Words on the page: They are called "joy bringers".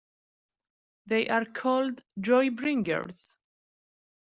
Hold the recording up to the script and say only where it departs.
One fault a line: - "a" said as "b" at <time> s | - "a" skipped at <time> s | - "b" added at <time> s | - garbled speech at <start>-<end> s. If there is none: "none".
none